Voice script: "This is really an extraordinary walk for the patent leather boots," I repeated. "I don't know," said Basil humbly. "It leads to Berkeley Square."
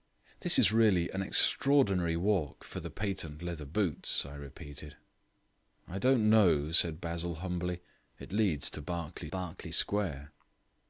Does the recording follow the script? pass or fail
fail